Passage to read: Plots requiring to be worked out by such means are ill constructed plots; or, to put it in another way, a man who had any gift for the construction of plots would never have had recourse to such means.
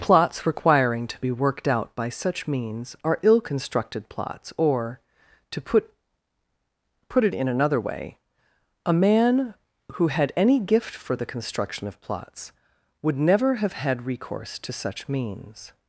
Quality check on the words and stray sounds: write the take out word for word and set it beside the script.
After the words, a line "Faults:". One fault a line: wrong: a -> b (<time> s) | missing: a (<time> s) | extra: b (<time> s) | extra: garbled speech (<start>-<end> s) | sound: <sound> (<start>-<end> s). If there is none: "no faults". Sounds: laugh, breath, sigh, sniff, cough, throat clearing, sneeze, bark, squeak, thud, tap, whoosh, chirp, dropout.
Plots requiring to be worked out by such means are ill constructed plots; or, to put put it in another way, a man who had any gift for the construction of plots would never have had recourse to such means.
Faults:
extra: put (7.1 s)